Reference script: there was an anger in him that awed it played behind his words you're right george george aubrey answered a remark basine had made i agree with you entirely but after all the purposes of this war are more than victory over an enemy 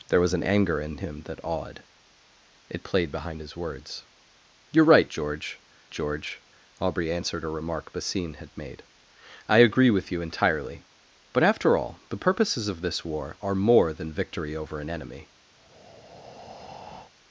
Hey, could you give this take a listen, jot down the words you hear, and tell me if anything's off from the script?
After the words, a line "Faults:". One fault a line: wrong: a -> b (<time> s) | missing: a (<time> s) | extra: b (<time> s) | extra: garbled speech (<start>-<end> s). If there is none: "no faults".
there was an anger in him that awed it played behind his words you're right george george aubrey answered a remark basine had made i agree with you entirely but after all the purposes of this war are more than victory over an enemy
Faults:
no faults